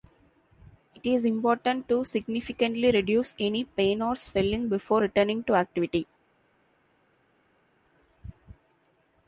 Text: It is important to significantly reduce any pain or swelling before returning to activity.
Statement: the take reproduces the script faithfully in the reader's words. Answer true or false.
true